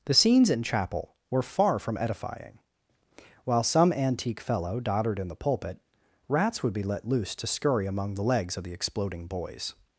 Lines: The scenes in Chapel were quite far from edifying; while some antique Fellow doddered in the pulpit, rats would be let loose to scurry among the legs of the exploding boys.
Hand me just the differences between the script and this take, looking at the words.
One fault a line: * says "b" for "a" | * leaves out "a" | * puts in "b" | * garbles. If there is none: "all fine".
* leaves out "quite"